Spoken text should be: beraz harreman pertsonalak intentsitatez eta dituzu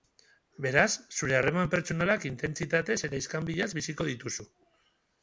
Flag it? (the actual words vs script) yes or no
yes